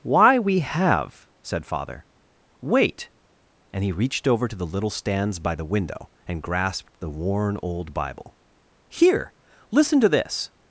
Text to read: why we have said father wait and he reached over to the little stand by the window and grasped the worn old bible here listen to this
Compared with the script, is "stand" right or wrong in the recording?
wrong